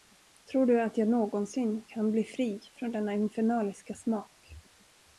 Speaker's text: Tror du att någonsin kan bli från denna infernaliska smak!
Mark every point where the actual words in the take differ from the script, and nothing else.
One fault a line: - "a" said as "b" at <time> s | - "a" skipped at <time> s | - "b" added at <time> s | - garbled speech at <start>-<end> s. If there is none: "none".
- "jag" added at 1.0 s
- "fri" added at 2.2 s